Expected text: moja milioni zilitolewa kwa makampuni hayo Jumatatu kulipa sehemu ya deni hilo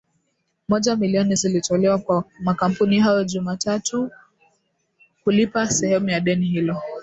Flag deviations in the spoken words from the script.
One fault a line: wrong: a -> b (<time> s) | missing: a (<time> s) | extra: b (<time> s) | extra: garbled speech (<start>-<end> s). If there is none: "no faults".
no faults